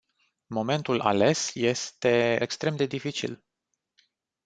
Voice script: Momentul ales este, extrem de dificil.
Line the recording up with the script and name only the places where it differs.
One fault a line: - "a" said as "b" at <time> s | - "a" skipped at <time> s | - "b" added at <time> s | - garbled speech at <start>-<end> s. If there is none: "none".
none